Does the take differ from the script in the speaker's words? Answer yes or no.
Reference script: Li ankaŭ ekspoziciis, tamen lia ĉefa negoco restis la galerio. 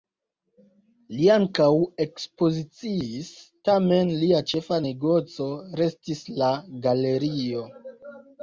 no